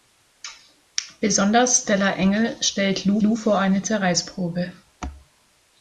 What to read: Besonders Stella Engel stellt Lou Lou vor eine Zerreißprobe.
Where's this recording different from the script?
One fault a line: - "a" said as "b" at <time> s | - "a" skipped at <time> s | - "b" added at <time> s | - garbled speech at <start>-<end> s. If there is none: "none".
none